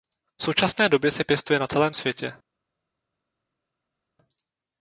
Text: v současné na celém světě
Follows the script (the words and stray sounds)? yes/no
no